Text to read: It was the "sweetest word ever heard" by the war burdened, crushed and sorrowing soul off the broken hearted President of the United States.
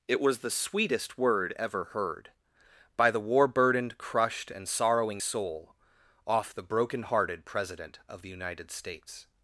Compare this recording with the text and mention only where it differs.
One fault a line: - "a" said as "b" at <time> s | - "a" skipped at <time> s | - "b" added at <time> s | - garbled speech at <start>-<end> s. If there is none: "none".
none